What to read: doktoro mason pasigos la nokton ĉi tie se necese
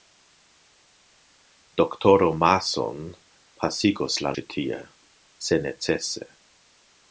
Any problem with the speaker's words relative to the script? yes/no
yes